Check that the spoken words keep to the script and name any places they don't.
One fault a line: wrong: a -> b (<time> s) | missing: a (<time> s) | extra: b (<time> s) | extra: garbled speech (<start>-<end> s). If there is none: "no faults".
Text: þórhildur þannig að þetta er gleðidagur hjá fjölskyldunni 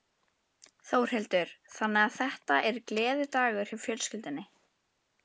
no faults